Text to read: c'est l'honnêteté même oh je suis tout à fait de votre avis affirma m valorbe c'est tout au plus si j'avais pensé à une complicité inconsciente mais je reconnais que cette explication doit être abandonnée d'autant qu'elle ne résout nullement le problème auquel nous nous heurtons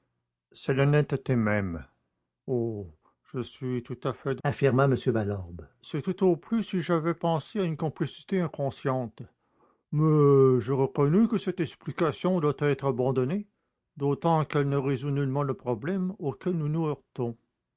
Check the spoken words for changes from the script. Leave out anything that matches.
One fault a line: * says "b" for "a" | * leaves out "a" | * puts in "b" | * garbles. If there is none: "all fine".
* leaves out "votre avis"